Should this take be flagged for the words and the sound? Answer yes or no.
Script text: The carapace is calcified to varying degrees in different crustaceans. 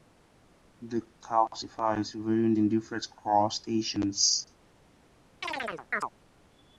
yes